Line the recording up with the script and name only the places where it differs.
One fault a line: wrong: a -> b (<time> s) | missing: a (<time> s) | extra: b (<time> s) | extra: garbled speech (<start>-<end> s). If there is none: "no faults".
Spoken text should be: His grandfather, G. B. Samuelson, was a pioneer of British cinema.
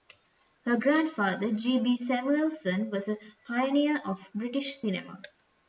wrong: His -> Her (0.7 s)